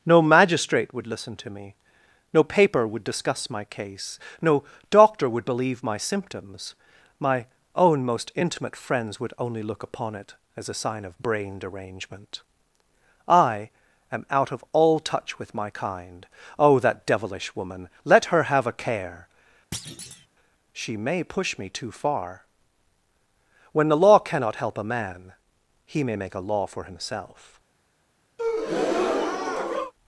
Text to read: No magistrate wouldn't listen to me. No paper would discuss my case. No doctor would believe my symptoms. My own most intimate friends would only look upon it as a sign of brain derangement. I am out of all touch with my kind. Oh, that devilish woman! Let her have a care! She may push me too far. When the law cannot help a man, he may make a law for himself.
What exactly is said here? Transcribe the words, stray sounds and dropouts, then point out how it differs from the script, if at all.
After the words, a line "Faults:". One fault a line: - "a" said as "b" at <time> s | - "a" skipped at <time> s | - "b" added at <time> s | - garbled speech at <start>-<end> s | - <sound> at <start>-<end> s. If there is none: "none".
No magistrate would listen to me. No paper would discuss my case. No doctor would believe my symptoms. My own most intimate friends would only look upon it as a sign of brain derangement. I am out of all touch with my kind. Oh, that devilish woman! Let her have a care! She may push me too far. When the law cannot help a man, he may make a law for himself.
Faults:
- "wouldn't" said as "would" at 0.9 s
- thud at 19.7-20.3 s
- breath at 28.4-29.9 s